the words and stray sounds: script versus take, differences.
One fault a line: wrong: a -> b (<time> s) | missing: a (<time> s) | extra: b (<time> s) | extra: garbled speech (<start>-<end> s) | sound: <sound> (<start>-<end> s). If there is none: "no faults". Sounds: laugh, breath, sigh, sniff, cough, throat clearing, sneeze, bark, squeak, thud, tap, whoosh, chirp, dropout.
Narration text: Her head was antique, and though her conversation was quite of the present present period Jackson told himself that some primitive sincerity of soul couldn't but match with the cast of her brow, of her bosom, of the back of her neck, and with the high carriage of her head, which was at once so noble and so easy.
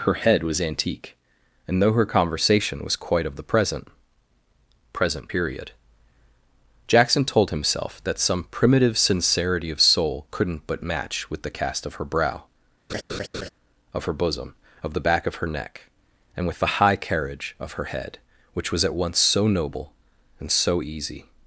sound: laugh (12.9-13.5 s)